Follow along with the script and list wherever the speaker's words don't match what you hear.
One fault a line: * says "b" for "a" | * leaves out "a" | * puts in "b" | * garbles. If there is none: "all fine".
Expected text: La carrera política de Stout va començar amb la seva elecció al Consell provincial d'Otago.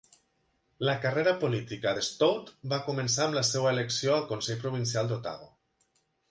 all fine